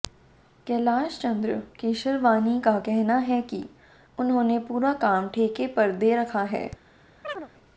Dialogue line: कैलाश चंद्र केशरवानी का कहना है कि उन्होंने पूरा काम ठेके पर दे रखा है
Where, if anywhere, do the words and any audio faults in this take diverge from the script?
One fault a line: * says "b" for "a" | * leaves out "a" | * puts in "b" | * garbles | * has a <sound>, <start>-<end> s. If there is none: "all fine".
* has a chirp, 7.2-7.5 s